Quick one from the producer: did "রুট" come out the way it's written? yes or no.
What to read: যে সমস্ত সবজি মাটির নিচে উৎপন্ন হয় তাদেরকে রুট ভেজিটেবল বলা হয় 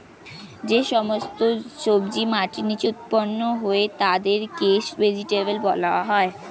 no